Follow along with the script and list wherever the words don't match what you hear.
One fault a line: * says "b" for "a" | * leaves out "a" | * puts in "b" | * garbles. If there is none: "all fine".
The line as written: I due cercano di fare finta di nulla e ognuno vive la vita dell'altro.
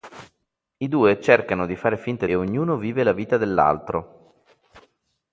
* leaves out "di nulla"